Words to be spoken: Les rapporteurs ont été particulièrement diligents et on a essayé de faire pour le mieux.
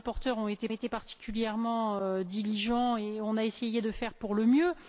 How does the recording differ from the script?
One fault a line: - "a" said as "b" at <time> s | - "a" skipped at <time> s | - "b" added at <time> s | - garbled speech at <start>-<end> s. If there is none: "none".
- "été" added at 0.7 s